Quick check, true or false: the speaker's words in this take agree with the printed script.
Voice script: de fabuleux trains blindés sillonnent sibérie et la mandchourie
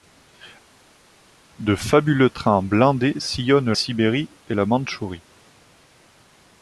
true